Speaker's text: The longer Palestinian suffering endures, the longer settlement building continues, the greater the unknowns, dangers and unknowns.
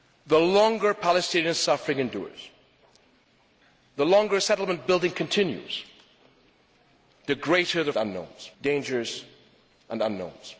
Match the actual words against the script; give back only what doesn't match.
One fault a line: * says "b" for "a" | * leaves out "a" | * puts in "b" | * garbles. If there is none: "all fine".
all fine